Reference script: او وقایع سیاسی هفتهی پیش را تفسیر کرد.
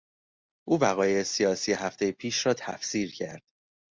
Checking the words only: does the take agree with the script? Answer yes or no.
yes